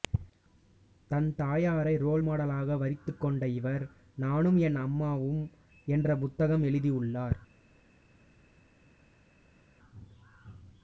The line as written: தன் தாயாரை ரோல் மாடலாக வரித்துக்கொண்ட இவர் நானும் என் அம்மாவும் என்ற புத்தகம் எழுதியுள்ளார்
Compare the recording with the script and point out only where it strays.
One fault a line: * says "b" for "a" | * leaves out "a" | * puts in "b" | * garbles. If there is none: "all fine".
all fine